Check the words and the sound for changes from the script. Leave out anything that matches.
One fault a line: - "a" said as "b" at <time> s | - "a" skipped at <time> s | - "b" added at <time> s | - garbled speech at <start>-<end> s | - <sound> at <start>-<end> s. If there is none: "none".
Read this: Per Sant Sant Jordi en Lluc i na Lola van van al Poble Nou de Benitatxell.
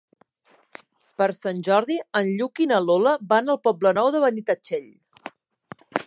- "Sant" skipped at 1.6 s
- "van" skipped at 3.5 s